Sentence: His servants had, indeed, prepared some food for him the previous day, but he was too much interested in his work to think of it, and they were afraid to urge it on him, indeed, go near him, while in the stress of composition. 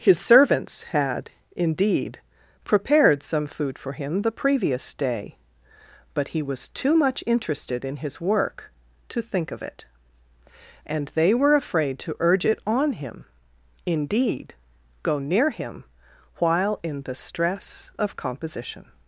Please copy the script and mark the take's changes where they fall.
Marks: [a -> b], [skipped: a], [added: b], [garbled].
His servants had, indeed, prepared some food for him the previous day, but he was too much interested in his work to think of it, and they were afraid to urge it on him, indeed, go near him, while in the stress of composition.